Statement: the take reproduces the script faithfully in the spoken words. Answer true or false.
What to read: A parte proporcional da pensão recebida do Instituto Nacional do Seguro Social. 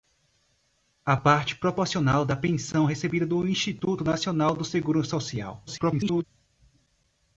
false